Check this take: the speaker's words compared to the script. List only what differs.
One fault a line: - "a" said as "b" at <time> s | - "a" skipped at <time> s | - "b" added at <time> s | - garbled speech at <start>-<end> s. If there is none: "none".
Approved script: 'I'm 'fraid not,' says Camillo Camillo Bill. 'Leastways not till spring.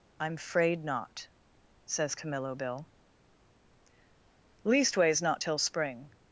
- "Camillo" skipped at 2.6 s